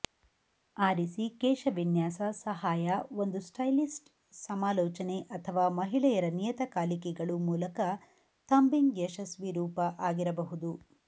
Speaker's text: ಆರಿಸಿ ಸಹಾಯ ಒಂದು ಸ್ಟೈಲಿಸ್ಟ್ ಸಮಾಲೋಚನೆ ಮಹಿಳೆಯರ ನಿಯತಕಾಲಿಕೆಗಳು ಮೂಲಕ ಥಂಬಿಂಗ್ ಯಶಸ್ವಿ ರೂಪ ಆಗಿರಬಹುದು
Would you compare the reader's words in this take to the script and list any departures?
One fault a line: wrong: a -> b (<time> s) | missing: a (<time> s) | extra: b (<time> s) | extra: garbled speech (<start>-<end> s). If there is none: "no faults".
extra: ಕೇಶವಿನ್ಯಾಸ (1.4 s)
extra: ಅಥವಾ (5.4 s)